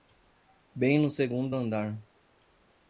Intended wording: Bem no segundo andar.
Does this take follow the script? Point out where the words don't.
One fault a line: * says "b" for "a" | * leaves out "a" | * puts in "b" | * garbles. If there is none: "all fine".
all fine